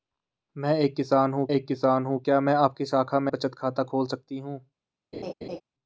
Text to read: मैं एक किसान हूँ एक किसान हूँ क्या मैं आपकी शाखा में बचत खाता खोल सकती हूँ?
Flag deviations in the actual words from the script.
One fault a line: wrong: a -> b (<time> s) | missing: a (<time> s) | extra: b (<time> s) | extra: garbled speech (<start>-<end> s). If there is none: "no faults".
no faults